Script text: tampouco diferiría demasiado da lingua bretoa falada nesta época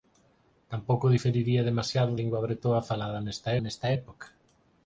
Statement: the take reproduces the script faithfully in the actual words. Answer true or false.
false